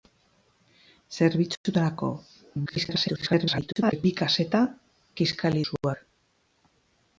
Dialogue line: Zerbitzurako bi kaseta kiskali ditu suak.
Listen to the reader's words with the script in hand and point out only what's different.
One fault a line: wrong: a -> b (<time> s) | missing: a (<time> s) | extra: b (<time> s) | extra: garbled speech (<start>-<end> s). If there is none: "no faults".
extra: garbled speech (2.7-4.1 s)
missing: ditu (5.6 s)